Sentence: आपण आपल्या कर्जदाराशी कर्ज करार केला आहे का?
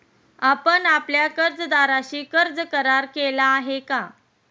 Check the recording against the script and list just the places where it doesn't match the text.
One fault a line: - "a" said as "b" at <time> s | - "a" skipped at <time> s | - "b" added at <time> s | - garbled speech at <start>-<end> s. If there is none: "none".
none